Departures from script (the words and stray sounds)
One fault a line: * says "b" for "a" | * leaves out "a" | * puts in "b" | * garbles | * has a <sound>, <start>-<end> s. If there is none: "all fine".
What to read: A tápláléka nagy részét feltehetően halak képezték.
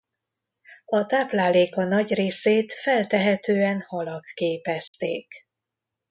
* has a dropout, 4.9-4.9 s